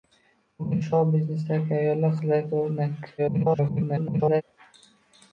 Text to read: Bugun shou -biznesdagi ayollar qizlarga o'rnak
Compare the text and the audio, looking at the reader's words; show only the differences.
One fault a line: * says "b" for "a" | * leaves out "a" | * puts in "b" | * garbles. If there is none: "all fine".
* garbles